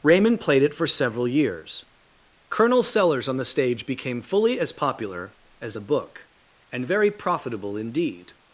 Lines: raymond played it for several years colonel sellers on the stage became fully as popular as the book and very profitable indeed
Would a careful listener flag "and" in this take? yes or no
no